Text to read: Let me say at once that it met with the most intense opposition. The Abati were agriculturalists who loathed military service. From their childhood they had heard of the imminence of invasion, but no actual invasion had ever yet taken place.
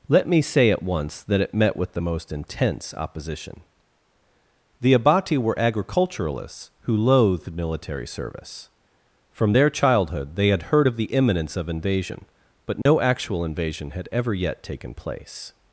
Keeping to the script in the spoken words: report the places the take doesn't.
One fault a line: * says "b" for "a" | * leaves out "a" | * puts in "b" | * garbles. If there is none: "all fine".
all fine